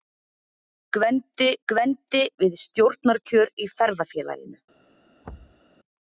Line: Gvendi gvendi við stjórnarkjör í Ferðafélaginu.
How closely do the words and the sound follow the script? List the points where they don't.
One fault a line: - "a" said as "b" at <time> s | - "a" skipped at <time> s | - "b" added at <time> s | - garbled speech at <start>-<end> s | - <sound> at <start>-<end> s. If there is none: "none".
- thud at 5.2-5.6 s